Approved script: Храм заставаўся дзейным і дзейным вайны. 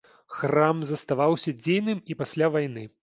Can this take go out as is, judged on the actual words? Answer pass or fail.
fail